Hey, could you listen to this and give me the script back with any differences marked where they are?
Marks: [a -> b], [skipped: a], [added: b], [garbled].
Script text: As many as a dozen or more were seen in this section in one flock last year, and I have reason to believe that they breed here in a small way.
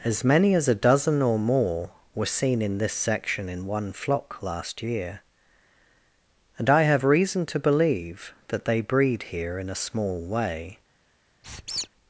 As many as a dozen or more were seen in this section in one flock last year, and I have reason to believe that they breed here in a small way.